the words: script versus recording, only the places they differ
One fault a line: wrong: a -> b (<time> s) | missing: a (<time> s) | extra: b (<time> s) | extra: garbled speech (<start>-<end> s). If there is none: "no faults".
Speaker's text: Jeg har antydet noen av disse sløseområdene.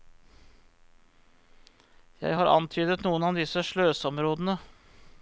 no faults